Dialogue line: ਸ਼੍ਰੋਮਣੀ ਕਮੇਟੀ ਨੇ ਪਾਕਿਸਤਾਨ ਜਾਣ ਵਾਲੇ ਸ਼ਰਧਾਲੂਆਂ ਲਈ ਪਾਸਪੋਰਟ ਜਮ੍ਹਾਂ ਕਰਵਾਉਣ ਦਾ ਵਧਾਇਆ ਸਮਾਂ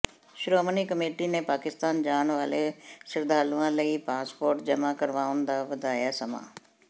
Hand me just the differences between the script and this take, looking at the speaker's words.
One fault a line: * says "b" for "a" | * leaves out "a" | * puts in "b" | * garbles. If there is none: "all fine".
all fine